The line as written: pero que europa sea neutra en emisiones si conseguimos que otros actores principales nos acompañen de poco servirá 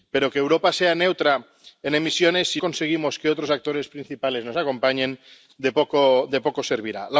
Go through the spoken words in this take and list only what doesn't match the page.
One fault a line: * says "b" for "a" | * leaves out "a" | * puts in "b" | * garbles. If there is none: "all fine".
all fine